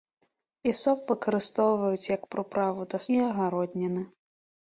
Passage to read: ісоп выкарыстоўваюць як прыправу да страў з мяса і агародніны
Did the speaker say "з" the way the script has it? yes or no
no